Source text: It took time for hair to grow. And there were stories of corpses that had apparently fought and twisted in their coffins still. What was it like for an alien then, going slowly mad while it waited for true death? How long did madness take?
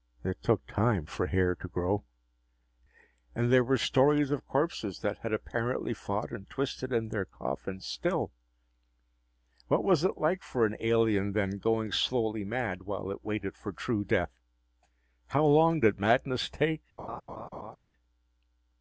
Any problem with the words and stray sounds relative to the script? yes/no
yes